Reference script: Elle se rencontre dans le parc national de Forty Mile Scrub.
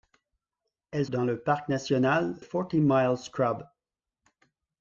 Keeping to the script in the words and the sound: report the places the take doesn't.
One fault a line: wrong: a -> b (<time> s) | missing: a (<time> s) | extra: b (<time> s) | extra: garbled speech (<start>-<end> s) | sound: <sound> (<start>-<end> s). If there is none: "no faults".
missing: se rencontre (1.1 s)
missing: de (2.4 s)